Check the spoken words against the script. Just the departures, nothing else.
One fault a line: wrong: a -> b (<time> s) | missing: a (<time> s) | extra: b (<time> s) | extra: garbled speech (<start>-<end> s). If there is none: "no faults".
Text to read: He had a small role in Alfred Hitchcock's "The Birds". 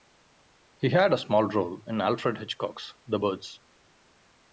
no faults